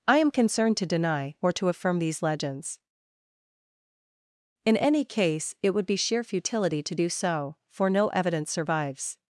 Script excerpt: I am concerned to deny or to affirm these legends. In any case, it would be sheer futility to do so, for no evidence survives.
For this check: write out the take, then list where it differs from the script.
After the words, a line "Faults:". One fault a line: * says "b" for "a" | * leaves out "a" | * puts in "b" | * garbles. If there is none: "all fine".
I am concerned to deny or to affirm these legends. In any case, it would be sheer futility to do so, for no evidence survives.
Faults:
all fine